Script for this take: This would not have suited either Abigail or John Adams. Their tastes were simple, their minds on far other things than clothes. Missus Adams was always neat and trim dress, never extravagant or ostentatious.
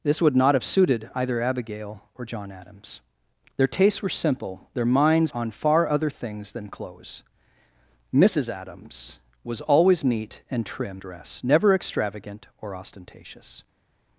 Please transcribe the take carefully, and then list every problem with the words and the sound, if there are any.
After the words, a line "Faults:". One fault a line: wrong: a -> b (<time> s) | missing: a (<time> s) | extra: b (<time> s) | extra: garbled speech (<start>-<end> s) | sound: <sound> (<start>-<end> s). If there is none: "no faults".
This would not have suited either Abigail or John Adams. Their tastes were simple, their minds on far other things than clothes. Missus Adams was always neat and trim dress, never extravagant or ostentatious.
Faults:
no faults